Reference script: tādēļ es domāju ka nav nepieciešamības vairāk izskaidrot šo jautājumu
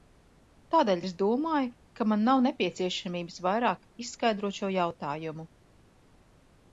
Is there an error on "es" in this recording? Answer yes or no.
no